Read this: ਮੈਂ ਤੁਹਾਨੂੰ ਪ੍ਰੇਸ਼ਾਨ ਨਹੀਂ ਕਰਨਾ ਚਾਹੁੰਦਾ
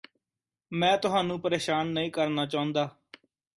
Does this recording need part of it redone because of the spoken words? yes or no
no